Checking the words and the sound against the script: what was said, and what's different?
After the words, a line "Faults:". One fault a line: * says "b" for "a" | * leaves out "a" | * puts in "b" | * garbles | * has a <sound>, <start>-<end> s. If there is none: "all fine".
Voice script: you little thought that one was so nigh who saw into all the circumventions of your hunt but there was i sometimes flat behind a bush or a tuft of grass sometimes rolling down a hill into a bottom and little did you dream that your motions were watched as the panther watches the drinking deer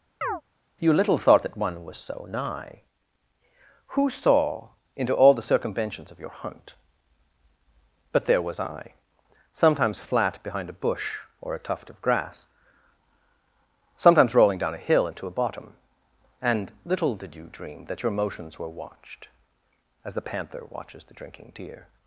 you little thought that one was so nigh who saw into all the circumventions of your hunt but there was i sometimes flat behind a bush or a tuft of grass sometimes rolling down a hill into a bottom and little did you dream that your motions were watched as the panther watches the drinking deer
Faults:
* has a chirp, 0.2-0.4 s